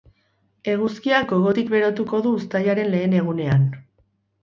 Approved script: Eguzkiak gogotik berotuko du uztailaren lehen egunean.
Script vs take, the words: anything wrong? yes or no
no